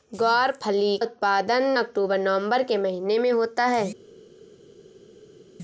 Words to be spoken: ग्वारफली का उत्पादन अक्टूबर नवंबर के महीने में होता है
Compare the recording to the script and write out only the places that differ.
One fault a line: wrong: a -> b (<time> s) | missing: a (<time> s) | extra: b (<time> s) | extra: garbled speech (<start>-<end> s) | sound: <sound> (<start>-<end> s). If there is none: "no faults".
missing: का (1.0 s)